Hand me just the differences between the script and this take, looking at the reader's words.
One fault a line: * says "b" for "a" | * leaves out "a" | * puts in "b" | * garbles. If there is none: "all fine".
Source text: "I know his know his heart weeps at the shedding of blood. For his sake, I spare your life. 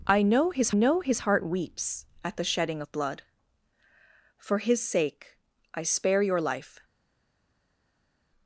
all fine